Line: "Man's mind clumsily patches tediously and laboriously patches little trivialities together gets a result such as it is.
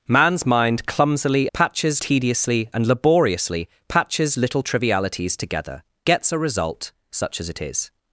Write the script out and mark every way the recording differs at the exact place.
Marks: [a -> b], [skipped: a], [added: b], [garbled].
"Man's mind clumsily patches tediously and laboriously patches little trivialities together gets a result such as it is.